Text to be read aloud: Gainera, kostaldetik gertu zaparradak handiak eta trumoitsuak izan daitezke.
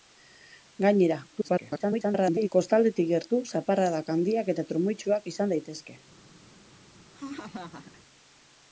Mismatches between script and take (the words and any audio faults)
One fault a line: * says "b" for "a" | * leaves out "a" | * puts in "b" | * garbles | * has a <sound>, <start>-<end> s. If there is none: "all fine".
* garbles
* has a laugh, 7.1-8.0 s